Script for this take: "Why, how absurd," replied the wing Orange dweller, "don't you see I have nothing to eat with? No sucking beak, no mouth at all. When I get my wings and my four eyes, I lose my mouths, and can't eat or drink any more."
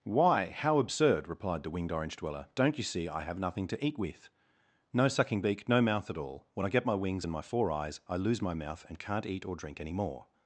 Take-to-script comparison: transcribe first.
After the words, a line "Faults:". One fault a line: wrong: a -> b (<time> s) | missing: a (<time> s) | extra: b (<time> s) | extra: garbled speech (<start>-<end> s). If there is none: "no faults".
"Why, how absurd," replied the winged Orange dweller, "don't you see I have nothing to eat with? No sucking beak, no mouth at all. When I get my wings and my four eyes, I lose my mouth, and can't eat or drink any more."
Faults:
wrong: wing -> winged (1.7 s)
wrong: mouths -> mouth (8.5 s)